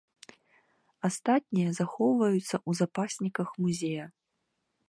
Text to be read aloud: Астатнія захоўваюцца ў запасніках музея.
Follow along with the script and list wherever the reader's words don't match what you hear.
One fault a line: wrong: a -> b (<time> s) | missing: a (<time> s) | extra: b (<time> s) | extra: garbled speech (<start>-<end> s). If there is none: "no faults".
no faults